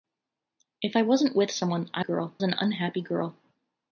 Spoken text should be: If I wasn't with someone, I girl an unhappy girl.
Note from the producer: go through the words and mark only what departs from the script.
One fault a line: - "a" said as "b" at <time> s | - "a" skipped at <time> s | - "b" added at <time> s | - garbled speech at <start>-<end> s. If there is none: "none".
none